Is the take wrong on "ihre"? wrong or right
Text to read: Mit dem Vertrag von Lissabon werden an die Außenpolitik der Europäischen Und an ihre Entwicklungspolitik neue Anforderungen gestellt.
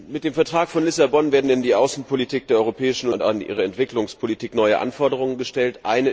right